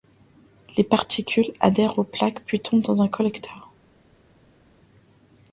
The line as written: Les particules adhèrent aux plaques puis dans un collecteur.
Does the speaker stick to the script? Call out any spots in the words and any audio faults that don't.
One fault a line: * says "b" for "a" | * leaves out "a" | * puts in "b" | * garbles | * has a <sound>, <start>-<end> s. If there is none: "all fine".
* puts in "tombent"